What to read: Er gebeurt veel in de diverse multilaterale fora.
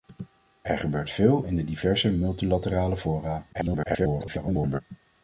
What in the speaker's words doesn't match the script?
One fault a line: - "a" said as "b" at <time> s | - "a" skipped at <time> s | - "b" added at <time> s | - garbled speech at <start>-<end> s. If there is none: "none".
- garbled speech at 3.5-4.8 s